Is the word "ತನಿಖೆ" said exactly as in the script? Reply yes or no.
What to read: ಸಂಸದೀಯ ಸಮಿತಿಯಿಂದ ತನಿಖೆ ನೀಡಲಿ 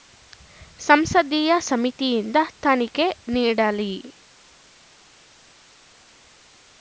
yes